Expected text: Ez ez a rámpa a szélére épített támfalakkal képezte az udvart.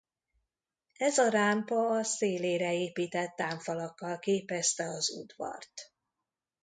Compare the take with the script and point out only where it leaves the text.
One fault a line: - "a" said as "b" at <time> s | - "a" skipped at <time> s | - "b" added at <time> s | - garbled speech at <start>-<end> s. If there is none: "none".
- "ez" skipped at 1.2 s